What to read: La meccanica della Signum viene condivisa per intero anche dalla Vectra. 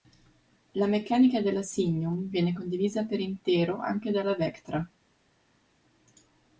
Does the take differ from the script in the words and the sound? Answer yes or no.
no